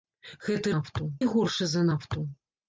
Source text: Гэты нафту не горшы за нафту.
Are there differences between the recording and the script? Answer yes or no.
no